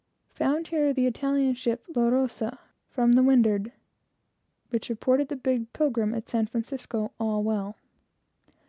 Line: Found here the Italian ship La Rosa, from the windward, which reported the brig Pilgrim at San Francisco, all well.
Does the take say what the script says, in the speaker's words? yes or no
yes